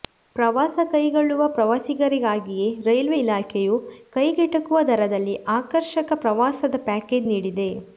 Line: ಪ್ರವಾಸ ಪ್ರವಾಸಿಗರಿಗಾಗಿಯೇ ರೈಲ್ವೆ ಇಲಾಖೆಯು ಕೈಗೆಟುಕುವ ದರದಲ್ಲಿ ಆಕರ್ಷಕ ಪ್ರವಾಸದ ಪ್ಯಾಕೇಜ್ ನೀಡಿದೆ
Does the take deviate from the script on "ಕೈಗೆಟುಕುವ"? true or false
false